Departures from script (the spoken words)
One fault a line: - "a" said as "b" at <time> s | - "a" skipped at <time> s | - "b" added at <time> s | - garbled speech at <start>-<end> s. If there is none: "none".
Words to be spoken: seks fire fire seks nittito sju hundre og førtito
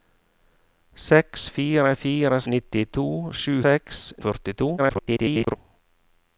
- "seks" skipped at 2.4 s
- "hundre" said as "seks" at 3.6 s
- garbled speech at 4.8-5.6 s